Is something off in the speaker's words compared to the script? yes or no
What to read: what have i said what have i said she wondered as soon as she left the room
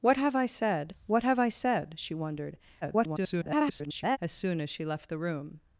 yes